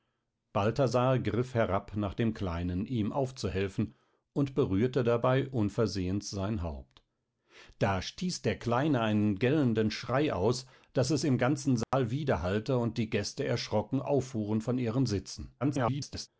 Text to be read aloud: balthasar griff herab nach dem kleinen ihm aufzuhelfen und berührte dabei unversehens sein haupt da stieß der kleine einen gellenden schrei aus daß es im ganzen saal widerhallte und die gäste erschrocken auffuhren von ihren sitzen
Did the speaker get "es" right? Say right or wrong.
right